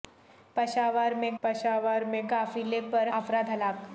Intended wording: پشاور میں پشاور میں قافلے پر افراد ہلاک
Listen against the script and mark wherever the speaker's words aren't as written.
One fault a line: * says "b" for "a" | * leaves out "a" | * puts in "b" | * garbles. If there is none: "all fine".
all fine